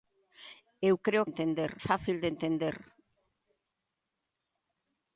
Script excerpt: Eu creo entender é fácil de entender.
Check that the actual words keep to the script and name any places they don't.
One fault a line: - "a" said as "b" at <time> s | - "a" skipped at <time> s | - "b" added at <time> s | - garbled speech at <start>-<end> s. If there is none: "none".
none